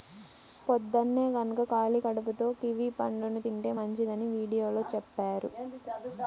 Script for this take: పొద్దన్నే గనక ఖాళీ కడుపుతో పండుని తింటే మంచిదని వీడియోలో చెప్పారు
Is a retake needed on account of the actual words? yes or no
yes